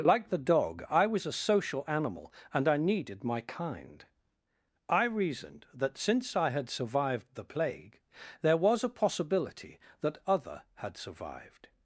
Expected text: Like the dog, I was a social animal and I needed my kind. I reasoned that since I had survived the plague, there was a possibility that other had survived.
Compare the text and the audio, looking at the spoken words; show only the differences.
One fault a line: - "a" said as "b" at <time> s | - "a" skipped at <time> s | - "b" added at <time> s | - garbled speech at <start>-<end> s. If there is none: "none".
none